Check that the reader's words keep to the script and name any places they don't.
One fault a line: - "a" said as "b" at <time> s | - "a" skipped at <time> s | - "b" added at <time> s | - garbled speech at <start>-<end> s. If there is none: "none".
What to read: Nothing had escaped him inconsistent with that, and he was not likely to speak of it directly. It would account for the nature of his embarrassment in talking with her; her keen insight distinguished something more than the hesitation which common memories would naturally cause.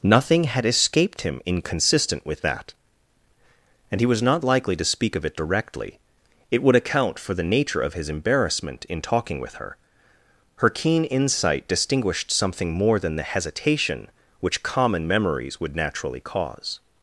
none